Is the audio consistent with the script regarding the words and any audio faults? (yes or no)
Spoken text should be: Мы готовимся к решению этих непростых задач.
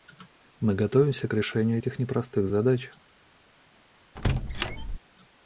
no